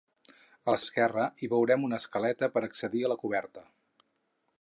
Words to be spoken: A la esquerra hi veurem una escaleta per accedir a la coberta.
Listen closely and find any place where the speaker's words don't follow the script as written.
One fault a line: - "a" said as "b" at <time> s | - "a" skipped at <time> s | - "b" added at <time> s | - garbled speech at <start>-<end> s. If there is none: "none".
none